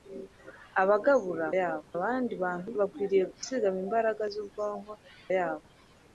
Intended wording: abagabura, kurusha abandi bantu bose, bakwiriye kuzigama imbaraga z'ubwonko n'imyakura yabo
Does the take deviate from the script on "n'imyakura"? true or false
true